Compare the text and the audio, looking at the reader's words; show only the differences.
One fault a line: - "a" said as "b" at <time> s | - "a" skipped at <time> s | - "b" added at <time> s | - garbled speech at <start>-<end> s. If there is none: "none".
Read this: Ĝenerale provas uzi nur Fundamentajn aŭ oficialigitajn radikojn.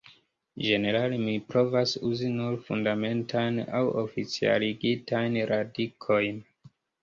- "mi" added at 1.2 s